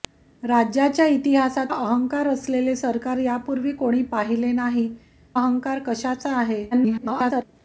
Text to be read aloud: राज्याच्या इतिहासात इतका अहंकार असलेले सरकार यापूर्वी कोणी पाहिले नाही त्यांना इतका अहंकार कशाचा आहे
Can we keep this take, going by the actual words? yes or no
no